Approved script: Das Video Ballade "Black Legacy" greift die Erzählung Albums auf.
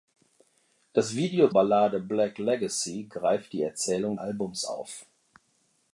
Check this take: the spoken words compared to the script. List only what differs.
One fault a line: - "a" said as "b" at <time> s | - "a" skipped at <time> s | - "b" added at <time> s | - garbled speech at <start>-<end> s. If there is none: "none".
none